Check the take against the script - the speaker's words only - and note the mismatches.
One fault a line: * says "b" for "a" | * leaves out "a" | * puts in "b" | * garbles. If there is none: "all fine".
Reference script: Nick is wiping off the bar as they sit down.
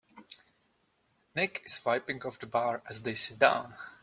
all fine